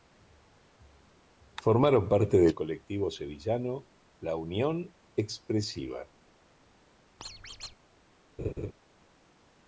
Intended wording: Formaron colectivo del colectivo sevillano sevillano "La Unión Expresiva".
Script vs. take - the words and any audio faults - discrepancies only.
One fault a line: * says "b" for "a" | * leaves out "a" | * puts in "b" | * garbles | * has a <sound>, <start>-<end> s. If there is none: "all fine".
* says "parte" for "colectivo"
* leaves out "sevillano"
* has a squeak, 7.2-7.8 s
* has a laugh, 8.4-8.7 s